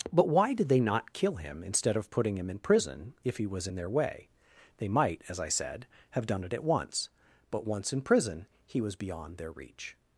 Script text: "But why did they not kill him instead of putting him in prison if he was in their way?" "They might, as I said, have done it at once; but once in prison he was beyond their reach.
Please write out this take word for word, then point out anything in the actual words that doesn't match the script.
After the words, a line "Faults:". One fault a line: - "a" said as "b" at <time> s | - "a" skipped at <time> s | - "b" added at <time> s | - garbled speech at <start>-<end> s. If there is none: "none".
"But why did they not kill him instead of putting him in prison if he was in their way?" "They might, as I said, have done it at once; but once in prison he was beyond their reach.
Faults:
none